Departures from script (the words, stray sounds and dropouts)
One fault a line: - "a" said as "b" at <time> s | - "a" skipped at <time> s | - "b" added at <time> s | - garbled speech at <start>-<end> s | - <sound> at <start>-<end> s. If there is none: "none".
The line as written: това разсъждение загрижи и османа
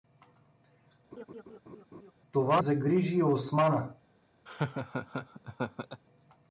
- laugh at 1.1-2.1 s
- "разсъждение" skipped at 2.6 s
- laugh at 4.5-6.0 s